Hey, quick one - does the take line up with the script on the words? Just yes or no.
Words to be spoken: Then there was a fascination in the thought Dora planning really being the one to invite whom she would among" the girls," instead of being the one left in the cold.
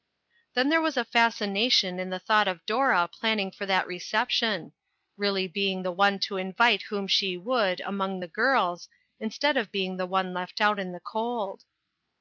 no